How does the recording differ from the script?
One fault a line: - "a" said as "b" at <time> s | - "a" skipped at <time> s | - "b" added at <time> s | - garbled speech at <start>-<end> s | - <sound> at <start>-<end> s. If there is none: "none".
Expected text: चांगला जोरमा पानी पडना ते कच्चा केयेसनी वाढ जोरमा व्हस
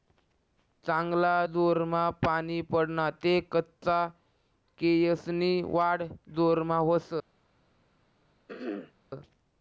- throat clearing at 8.5-8.9 s